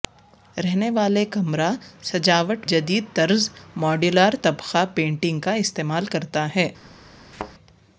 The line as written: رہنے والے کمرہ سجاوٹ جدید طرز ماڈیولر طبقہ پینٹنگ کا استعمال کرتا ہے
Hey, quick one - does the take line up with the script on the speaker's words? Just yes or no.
yes